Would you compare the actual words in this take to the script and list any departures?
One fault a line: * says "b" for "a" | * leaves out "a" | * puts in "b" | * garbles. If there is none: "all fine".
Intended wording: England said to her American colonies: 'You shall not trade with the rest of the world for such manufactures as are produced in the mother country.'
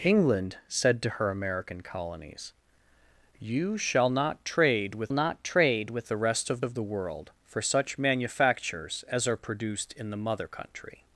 * puts in "not trade with"
* puts in "of"